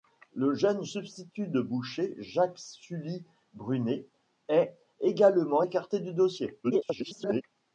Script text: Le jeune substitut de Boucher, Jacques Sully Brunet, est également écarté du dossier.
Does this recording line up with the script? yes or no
no